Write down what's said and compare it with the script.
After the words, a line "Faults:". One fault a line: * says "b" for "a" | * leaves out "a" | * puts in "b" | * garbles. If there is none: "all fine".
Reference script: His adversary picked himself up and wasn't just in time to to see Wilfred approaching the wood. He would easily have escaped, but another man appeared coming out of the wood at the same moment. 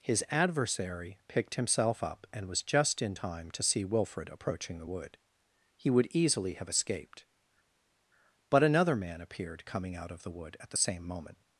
His adversary picked himself up and was just in time to see Wilfred approaching the wood. He would easily have escaped, but another man appeared coming out of the wood at the same moment.
Faults:
* says "was" for "wasn't"
* leaves out "to"